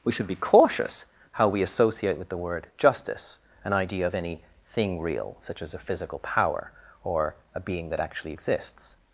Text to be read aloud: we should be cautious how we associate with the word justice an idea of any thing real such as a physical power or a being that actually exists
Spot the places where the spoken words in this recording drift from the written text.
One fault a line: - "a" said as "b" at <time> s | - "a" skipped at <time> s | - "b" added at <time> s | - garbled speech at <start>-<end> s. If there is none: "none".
none